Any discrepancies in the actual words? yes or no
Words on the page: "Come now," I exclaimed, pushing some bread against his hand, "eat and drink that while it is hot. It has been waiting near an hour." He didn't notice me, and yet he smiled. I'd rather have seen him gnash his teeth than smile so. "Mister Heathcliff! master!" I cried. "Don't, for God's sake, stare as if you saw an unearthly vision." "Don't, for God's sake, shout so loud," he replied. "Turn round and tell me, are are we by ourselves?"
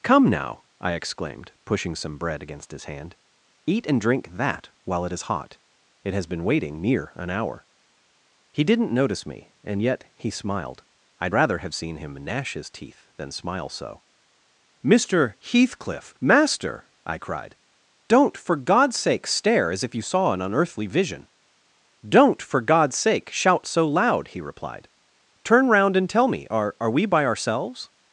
no